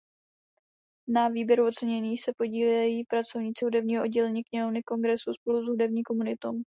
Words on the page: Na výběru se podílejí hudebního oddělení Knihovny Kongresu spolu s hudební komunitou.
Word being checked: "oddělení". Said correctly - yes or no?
yes